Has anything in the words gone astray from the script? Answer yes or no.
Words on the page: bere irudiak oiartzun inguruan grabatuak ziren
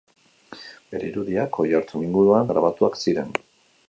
no